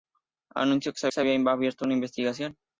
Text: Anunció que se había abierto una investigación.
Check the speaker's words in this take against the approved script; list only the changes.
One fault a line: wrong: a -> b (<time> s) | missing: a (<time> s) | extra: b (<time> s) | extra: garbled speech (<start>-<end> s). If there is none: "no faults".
extra: se (1.1 s)